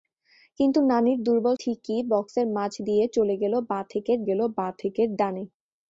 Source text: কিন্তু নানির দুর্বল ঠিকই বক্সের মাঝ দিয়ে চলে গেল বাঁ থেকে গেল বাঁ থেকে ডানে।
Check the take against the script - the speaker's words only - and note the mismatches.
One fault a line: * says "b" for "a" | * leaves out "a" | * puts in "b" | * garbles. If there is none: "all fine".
all fine